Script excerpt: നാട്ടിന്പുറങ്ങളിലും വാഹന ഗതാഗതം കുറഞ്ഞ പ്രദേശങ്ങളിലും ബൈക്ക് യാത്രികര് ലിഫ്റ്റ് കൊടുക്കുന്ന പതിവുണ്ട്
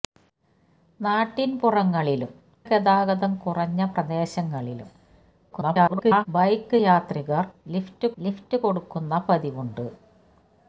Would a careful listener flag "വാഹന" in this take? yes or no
yes